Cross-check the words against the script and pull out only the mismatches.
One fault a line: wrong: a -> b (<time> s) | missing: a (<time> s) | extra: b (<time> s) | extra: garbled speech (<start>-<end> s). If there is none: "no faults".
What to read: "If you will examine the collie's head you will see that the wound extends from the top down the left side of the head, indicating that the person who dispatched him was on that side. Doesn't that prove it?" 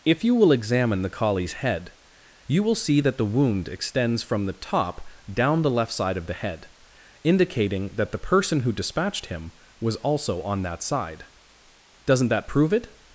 extra: also (10.0 s)